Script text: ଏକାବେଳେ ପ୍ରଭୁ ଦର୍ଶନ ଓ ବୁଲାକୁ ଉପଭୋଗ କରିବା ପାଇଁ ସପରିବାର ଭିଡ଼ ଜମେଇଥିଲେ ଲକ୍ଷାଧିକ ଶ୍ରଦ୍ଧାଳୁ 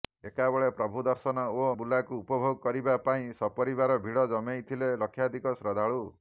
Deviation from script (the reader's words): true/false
false